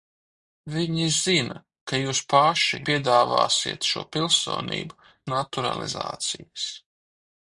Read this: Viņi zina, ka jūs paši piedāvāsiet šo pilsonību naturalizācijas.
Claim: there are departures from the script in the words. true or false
false